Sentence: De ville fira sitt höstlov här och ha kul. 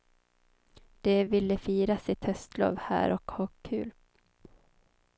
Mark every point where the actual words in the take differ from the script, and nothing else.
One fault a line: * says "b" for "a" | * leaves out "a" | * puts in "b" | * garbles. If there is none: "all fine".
all fine